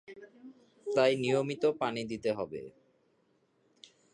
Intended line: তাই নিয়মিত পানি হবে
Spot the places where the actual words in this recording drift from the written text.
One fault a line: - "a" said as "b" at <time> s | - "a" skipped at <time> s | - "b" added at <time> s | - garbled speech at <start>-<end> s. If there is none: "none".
- "দিতে" added at 2.1 s